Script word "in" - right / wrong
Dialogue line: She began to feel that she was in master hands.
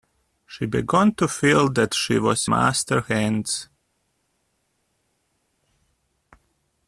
wrong